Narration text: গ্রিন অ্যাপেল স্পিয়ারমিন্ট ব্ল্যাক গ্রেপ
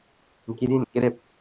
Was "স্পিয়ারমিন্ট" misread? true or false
true